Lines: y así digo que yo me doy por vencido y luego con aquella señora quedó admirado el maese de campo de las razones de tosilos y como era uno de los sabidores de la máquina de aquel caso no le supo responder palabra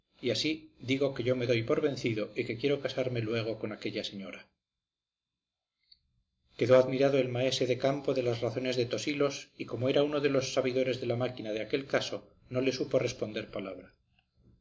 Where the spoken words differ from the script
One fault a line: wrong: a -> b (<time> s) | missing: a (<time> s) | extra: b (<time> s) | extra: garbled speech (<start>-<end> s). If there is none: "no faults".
extra: que quiero casarme (2.5 s)